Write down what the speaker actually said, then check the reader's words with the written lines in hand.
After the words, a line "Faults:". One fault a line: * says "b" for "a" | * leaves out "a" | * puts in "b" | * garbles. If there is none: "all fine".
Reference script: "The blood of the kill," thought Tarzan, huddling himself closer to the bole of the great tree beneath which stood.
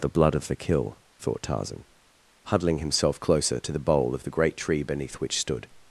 "The blood of the kill," thought Tarzan, huddling himself closer to the bole of the great tree beneath which stood.
Faults:
all fine